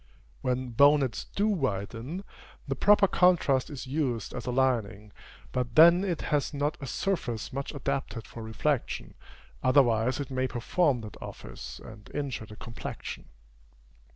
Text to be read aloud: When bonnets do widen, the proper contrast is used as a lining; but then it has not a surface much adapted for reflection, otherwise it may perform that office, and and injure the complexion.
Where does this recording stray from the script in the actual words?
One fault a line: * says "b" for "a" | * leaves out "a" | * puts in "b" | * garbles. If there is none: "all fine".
* leaves out "and"